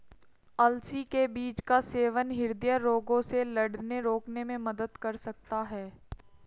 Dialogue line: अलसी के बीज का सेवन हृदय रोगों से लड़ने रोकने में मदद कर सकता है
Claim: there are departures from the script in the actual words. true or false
false